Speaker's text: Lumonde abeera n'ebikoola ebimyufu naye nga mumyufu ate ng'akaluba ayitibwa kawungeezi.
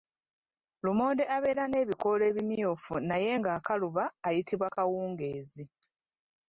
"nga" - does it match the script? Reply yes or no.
no